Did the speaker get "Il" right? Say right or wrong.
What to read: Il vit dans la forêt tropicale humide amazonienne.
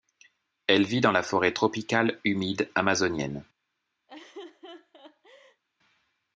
wrong